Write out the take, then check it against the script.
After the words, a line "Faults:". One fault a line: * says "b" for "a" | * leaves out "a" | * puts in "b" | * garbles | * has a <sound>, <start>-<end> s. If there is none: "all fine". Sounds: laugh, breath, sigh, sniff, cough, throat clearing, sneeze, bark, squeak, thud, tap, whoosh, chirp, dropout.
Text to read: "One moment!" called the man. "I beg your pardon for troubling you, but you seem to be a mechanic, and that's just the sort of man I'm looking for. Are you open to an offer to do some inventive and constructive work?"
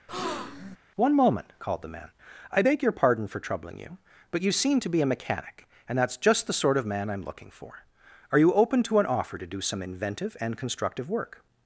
"One moment!" called the man. "I beg your pardon for troubling you, but you seem to be a mechanic, and that's just the sort of man I'm looking for. Are you open to an offer to do some inventive and constructive work?"
Faults:
* has a breath, 0.1-0.8 s